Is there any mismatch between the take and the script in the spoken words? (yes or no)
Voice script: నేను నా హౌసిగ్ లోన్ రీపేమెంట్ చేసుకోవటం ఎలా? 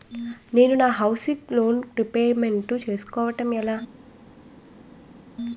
no